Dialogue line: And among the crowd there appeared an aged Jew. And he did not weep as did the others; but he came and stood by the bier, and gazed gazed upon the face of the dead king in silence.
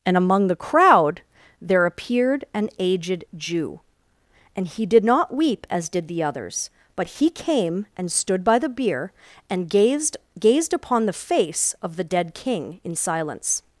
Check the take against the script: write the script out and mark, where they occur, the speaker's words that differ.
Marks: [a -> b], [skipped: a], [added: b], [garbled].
And among the crowd there appeared an aged Jew. And he did not weep as did the others; but he came and stood by the bier, and gazed gazed upon the face of the dead king in silence.